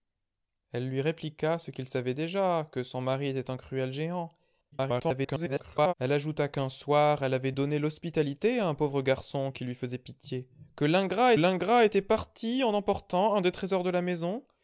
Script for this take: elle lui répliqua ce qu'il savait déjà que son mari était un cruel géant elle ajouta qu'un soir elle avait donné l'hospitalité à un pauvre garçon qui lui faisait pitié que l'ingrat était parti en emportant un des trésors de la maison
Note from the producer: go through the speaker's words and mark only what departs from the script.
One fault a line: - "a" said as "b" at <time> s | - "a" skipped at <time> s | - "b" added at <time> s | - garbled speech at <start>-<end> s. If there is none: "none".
- garbled speech at 4.7-5.9 s
- "l'ingrat" added at 11.3 s